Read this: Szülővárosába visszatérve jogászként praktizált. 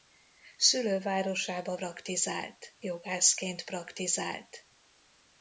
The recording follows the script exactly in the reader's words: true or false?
false